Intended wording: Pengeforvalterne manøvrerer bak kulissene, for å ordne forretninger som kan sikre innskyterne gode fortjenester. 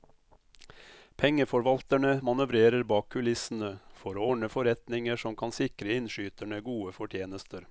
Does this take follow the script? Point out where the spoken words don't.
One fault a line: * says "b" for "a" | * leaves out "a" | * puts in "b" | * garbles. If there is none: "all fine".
all fine